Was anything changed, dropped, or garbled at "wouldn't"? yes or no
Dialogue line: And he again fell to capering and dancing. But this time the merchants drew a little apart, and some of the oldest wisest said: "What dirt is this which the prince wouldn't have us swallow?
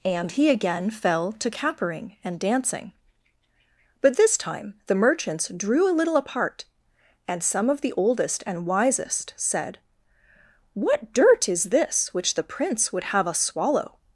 yes